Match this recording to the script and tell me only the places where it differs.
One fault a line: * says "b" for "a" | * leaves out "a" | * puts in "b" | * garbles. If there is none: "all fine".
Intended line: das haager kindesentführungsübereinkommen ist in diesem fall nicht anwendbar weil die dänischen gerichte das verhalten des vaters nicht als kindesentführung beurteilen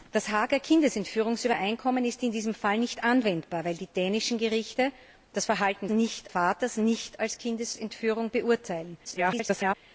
* says "nicht" for "des"
* garbles